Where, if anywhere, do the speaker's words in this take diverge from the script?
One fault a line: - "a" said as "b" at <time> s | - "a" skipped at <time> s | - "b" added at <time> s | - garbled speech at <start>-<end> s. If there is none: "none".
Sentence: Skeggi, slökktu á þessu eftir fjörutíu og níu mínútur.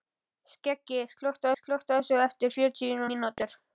- "slökktu" added at 1.6 s
- "og níu" skipped at 3.0 s